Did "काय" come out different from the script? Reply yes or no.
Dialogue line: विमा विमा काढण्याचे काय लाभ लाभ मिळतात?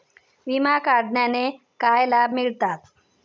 no